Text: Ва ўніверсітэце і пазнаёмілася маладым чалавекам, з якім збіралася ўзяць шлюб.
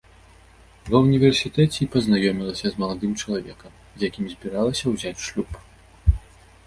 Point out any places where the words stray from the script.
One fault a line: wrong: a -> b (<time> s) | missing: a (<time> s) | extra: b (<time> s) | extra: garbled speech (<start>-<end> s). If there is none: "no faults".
extra: з (2.7 s)